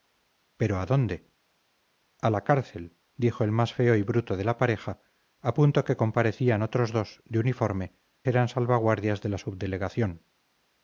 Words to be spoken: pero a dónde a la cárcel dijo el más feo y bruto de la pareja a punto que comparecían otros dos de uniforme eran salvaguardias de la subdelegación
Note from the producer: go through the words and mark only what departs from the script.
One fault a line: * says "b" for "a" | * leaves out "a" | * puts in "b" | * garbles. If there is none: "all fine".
all fine